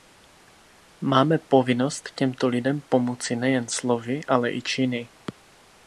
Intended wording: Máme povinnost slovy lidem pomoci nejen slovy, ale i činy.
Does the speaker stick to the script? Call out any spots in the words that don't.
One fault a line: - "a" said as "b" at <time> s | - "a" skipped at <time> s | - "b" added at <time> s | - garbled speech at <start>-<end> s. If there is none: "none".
- "slovy" said as "těmto" at 2.1 s